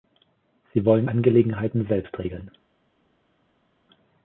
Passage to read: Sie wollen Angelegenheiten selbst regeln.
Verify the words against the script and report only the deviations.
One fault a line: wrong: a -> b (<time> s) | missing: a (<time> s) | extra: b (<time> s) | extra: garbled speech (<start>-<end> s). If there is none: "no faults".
no faults